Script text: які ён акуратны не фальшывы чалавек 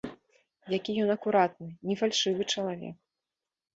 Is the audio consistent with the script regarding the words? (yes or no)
yes